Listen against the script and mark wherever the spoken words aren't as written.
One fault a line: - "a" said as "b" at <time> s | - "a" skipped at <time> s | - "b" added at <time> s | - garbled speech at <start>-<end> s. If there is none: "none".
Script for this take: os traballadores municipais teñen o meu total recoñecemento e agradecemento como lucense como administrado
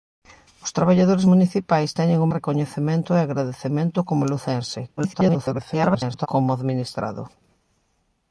- "meu total" skipped at 2.3 s
- garbled speech at 5.0-6.3 s